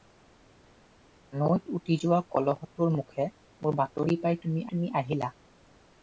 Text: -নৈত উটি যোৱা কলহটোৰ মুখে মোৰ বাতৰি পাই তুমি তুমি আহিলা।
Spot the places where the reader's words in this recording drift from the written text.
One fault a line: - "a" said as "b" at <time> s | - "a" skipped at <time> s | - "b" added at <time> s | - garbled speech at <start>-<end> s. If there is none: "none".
none